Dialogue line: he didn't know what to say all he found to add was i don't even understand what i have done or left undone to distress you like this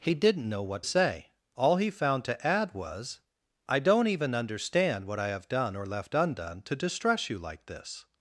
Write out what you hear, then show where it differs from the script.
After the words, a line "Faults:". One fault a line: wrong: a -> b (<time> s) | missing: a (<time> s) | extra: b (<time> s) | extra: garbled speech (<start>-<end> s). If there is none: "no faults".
he didn't know what say all he found to add was i don't even understand what i have done or left undone to distress you like this
Faults:
missing: to (0.8 s)